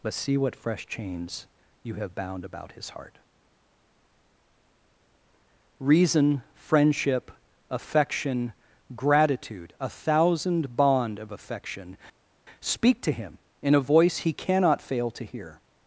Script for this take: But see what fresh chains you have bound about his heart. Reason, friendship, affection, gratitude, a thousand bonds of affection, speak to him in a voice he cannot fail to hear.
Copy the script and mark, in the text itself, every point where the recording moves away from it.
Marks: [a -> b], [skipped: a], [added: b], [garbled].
But see what fresh chains you have bound about his heart. Reason, friendship, affection, gratitude, a thousand [bonds -> bond] of affection, speak to him in a voice he cannot fail to hear.